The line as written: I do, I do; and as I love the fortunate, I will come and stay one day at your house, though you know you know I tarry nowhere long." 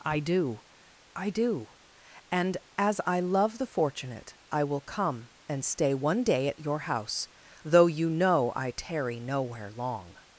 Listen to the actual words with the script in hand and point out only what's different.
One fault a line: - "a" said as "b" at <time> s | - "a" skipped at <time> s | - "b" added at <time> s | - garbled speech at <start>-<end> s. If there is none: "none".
- "you know" skipped at 8.5 s